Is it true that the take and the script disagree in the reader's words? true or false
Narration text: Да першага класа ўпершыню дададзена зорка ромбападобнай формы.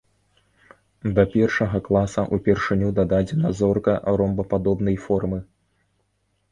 false